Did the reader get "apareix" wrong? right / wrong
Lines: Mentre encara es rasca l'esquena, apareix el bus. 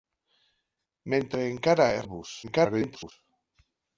wrong